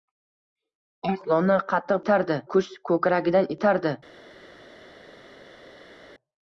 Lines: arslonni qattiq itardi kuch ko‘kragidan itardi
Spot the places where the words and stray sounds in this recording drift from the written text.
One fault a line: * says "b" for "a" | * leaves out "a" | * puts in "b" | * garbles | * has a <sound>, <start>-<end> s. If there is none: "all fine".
all fine